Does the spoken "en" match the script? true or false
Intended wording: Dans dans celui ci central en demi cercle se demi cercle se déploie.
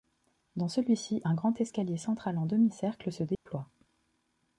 false